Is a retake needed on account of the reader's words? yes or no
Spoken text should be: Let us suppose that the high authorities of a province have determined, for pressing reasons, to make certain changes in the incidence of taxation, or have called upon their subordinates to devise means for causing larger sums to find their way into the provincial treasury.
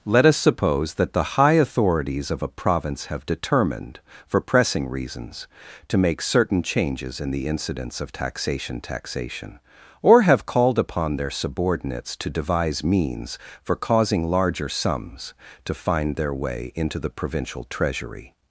yes